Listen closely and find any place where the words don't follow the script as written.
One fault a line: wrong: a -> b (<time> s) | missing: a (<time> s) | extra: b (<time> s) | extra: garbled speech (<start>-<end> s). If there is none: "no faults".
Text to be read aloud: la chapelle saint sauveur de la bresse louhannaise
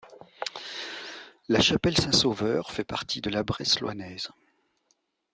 extra: fait partie (2.7 s)